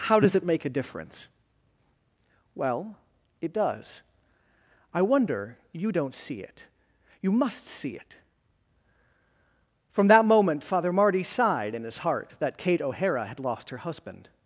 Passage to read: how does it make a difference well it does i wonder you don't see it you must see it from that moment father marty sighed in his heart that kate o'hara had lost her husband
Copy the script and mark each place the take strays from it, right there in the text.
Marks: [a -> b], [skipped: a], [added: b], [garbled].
how does it make a difference well it does i wonder you don't see it you must see it from that moment father marty sighed in his heart that kate o'hara had lost her husband